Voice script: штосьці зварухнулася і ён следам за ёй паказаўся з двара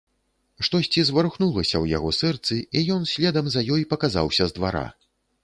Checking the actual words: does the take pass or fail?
fail